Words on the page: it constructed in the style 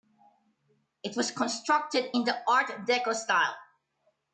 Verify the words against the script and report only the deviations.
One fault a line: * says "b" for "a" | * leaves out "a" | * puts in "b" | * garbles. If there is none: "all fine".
* puts in "was"
* puts in "art deco"